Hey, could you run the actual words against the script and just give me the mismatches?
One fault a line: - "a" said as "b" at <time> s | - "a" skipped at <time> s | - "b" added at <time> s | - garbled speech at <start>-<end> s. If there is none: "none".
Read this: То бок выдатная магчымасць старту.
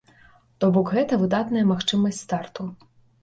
- "гэта" added at 0.9 s